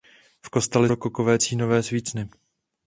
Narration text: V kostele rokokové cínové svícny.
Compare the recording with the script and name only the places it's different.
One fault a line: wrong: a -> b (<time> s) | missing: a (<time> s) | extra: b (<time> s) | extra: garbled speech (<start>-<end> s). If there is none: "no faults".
no faults